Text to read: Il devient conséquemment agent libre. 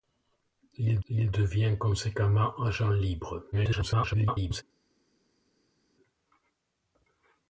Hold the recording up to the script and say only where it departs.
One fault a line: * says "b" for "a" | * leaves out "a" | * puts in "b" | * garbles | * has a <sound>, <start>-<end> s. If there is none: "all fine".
* puts in "il"
* garbles